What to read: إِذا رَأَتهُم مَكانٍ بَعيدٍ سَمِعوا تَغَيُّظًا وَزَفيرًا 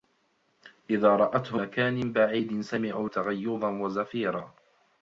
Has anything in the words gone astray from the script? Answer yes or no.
no